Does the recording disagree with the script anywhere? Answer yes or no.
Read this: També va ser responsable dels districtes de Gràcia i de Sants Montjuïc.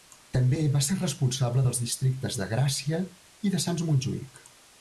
no